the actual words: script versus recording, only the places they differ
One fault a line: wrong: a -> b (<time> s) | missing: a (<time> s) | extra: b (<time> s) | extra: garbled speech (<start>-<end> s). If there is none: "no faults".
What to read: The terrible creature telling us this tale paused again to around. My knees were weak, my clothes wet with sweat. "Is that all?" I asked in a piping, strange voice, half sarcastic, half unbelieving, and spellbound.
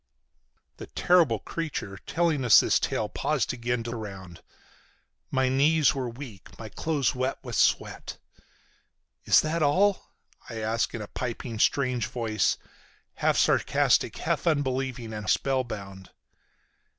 no faults